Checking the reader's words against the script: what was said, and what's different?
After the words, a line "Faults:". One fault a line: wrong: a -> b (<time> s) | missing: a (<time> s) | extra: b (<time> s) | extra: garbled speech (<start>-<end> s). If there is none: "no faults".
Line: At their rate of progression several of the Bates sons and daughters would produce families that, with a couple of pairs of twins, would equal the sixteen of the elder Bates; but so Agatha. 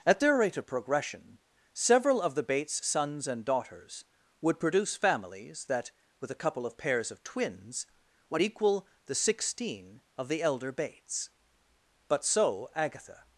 At their rate of progression several of the Bates sons and daughters would produce families that, with a couple of pairs of twins, would equal the sixteen of the elder Bates; but so Agatha.
Faults:
no faults